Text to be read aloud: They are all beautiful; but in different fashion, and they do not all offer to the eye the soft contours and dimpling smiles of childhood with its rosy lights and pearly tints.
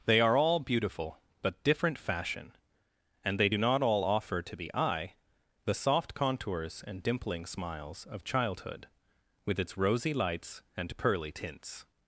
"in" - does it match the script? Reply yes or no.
no